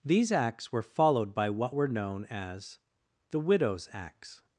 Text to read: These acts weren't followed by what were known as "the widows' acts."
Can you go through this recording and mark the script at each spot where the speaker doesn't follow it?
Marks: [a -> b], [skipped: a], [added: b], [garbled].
These acts [weren't -> were] followed by what were known as "the widows' acts."